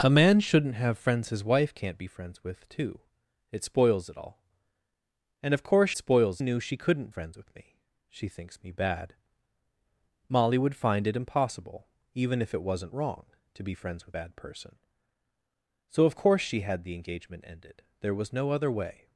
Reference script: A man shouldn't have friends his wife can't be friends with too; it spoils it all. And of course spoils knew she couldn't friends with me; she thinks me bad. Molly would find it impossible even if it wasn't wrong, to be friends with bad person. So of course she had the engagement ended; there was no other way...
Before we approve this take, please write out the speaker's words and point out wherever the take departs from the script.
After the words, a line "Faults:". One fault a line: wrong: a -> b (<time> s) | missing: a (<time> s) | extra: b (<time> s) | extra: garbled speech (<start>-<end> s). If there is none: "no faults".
A man shouldn't have friends his wife can't be friends with too; it spoils it all. And of course spoils knew she couldn't friends with me; she thinks me bad. Molly would find it impossible even if it wasn't wrong, to be friends with bad person. So of course she had the engagement ended; there was no other way...
Faults:
no faults